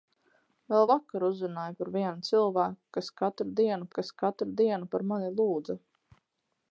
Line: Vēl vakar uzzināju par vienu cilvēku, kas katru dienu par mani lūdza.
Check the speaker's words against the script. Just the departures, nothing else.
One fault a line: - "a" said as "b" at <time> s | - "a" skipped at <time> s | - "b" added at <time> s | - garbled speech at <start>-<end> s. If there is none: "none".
- "kas katru dienu" added at 4.0 s